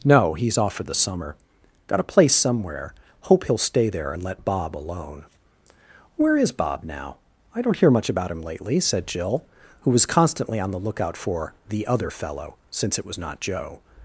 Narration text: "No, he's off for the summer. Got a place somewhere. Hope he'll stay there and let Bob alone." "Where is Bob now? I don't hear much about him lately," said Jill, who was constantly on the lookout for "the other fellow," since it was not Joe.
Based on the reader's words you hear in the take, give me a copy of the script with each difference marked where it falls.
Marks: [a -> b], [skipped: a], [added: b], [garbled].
"No, he's off for the summer. Got a place somewhere. Hope he'll stay there and let Bob alone." "Where is Bob now? I don't hear much about him lately," said Jill, who was constantly on the lookout for "the other fellow," since it was not Joe.